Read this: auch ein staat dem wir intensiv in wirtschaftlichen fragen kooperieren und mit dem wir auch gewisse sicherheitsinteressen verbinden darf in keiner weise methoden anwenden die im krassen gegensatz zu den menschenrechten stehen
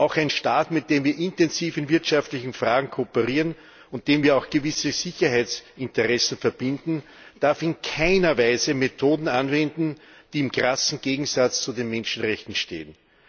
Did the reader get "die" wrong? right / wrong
right